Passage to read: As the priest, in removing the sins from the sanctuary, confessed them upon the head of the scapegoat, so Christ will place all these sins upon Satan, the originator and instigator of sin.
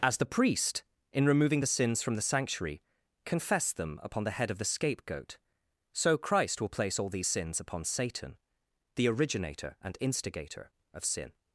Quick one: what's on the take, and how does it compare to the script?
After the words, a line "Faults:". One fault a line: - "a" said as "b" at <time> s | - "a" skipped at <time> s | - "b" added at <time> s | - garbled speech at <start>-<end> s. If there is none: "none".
As the priest, in removing the sins from the sanctuary, confessed them upon the head of the scapegoat, so Christ will place all these sins upon Satan, the originator and instigator of sin.
Faults:
none